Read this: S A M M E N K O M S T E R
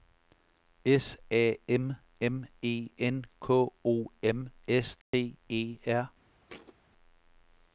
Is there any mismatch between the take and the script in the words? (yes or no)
no